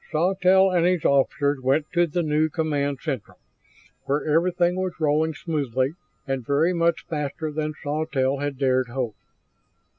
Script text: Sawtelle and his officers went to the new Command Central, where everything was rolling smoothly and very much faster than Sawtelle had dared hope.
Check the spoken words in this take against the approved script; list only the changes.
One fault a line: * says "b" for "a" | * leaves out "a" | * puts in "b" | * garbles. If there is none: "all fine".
all fine